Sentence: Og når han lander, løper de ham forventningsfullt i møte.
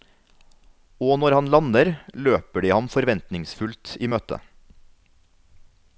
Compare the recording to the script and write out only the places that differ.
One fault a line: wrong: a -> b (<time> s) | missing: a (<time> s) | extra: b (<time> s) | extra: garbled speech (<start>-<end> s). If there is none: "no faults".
no faults